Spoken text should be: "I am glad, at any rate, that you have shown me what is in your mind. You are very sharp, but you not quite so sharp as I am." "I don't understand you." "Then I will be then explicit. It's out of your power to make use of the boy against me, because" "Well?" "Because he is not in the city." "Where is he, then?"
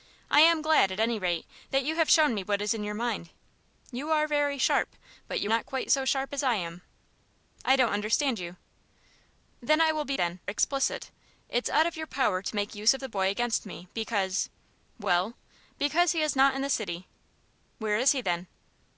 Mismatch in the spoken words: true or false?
false